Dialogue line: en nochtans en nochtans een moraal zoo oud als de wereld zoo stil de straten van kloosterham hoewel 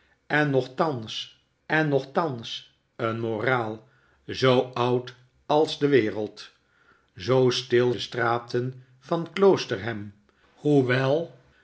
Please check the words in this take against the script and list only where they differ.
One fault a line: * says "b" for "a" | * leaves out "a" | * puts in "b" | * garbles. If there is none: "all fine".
all fine